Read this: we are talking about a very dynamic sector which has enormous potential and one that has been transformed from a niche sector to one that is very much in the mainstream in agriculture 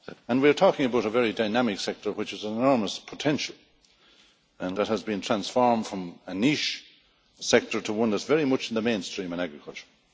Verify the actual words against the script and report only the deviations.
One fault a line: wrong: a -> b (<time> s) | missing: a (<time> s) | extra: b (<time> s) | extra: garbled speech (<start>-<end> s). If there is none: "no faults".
missing: one (4.8 s)